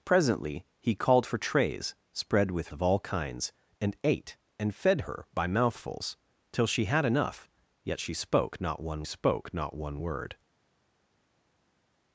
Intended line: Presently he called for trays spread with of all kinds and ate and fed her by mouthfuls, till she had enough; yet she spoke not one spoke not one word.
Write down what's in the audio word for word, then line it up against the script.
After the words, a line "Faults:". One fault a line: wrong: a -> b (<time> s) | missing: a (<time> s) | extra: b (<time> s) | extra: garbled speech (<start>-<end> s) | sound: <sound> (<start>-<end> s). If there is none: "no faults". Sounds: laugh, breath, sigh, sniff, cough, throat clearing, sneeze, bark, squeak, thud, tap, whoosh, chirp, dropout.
Presently he called for trays spread with of all kinds and ate and fed her by mouthfuls, till she had enough; yet she spoke not one spoke not one word.
Faults:
no faults